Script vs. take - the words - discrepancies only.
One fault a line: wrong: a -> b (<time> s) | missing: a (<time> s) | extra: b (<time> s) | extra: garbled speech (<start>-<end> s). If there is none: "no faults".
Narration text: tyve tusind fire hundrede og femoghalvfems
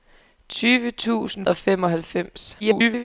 missing: fire hundrede (1.4 s)
extra: garbled speech (2.6-3.0 s)